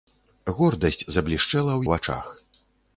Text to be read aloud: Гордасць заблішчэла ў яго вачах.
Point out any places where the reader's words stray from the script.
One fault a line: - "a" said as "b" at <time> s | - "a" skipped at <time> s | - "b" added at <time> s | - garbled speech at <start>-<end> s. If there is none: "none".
- "яго" skipped at 1.8 s